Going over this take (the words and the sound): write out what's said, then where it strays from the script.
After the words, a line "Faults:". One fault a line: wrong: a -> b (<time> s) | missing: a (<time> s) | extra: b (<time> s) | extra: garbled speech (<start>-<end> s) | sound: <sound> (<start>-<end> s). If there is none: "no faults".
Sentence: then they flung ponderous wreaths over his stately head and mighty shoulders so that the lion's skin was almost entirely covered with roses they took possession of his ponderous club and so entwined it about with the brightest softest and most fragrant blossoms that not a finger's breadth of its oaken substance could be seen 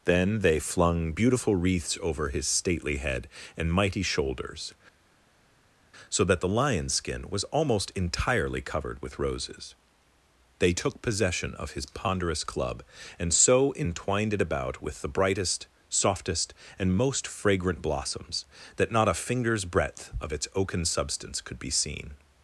then they flung beautiful wreaths over his stately head and mighty shoulders so that the lion's skin was almost entirely covered with roses they took possession of his ponderous club and so entwined it about with the brightest softest and most fragrant blossoms that not a finger's breadth of its oaken substance could be seen
Faults:
wrong: ponderous -> beautiful (1.1 s)